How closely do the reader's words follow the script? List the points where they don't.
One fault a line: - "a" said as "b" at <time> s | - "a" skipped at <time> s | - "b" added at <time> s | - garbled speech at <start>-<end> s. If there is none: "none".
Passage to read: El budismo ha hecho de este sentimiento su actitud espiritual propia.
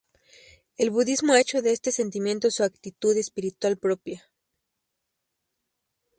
none